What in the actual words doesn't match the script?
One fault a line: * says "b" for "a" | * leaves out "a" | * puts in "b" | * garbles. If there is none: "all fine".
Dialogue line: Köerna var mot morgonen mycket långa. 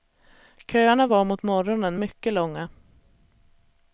all fine